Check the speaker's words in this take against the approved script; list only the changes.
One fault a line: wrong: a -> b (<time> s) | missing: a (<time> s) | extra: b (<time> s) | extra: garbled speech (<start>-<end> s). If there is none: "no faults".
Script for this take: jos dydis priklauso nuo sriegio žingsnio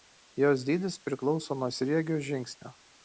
no faults